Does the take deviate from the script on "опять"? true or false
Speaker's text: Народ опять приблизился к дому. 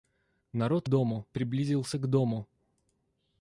true